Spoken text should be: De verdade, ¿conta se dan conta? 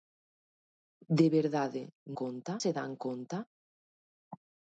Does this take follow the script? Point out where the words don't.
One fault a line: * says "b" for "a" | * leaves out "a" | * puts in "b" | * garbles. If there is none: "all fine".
all fine